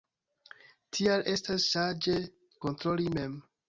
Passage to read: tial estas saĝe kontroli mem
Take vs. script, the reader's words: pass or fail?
pass